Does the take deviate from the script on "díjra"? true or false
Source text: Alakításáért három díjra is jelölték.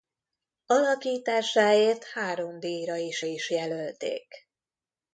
false